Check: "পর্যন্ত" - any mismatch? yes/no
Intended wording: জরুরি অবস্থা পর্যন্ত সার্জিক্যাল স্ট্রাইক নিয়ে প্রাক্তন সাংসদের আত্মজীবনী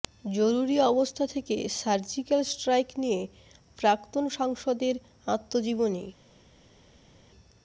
yes